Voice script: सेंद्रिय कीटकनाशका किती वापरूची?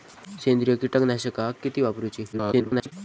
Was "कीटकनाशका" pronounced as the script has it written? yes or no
yes